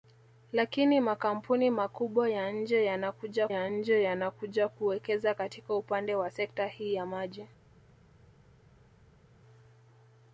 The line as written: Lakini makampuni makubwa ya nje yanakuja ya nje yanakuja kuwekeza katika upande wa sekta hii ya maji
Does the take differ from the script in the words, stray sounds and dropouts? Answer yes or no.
no